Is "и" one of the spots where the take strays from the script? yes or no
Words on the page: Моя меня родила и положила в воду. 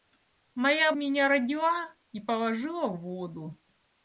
no